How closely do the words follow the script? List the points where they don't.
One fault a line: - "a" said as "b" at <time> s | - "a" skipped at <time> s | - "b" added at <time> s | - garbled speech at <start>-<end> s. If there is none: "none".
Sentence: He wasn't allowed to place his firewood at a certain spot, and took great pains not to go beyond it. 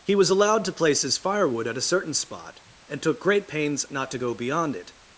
- "wasn't" said as "was" at 0.1 s